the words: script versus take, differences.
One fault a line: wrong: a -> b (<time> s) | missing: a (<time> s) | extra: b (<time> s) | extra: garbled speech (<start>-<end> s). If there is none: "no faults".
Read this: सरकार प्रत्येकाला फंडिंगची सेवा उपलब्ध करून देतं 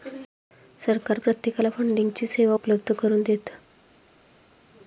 no faults